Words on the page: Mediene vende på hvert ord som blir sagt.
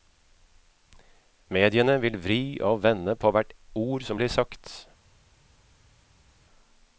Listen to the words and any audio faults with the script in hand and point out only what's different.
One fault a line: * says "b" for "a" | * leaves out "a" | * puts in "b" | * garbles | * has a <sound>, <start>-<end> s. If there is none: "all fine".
* puts in "vil vri og"